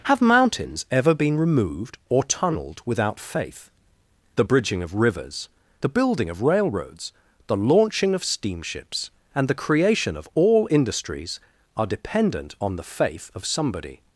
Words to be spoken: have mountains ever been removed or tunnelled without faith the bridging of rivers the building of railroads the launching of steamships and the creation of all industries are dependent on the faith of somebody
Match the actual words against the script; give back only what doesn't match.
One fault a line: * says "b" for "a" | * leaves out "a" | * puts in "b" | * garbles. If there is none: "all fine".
all fine